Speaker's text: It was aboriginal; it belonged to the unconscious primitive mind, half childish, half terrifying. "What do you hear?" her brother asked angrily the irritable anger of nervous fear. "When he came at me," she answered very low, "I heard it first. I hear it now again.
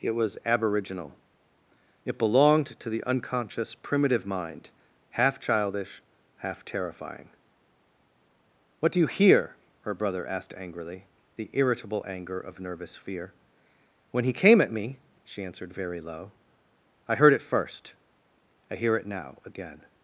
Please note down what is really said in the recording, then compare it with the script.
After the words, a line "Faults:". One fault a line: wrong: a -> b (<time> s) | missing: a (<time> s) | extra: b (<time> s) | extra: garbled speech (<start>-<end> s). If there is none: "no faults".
It was aboriginal; it belonged to the unconscious primitive mind, half childish, half terrifying. "What do you hear?" her brother asked angrily the irritable anger of nervous fear. "When he came at me," she answered very low, "I heard it first. I hear it now again.
Faults:
no faults